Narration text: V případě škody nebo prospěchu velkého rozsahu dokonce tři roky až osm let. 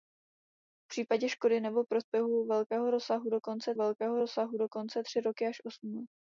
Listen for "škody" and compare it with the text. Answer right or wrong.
right